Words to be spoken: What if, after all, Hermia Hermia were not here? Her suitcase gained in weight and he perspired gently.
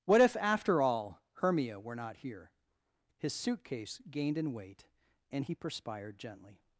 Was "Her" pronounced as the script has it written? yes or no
no